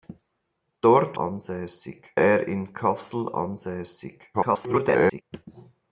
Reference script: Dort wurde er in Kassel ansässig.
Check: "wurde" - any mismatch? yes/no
yes